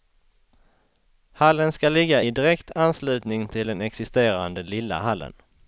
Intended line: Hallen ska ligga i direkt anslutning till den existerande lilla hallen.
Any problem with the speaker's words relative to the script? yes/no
no